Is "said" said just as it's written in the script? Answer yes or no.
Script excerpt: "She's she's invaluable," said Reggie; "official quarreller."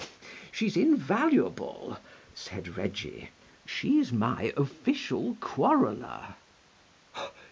yes